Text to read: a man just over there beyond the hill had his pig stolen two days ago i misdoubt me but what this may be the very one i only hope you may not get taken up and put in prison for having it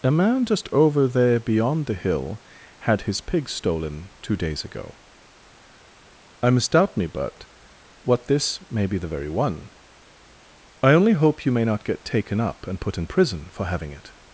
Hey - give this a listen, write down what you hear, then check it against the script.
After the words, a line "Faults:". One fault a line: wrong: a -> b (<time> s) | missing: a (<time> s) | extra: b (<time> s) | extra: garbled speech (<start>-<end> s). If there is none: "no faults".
a man just over there beyond the hill had his pig stolen two days ago i misdoubt me but what this may be the very one i only hope you may not get taken up and put in prison for having it
Faults:
no faults